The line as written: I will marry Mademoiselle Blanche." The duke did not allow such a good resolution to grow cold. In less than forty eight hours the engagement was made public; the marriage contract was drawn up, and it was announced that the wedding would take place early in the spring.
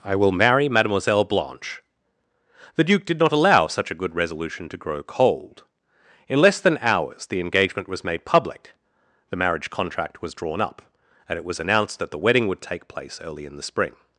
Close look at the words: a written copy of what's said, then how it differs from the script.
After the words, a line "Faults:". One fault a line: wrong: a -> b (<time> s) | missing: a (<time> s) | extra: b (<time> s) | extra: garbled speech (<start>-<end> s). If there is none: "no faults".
I will marry Mademoiselle Blanche." The duke did not allow such a good resolution to grow cold. In less than hours the engagement was made public; the marriage contract was drawn up, and it was announced that the wedding would take place early in the spring.
Faults:
missing: forty eight (6.8 s)